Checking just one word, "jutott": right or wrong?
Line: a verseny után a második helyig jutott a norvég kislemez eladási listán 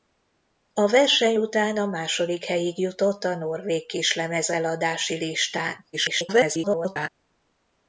right